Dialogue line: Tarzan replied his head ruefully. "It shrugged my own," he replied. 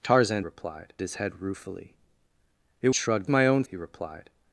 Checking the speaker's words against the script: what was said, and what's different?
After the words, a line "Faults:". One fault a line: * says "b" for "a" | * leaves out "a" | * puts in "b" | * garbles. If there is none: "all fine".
Tarzan replied his head ruefully. "It shrugged my own," he replied.
Faults:
all fine